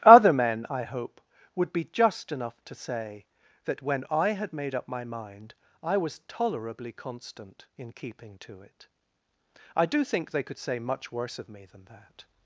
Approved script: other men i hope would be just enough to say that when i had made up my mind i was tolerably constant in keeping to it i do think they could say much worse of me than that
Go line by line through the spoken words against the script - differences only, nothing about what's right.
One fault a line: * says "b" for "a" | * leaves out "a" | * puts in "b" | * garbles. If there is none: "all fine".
all fine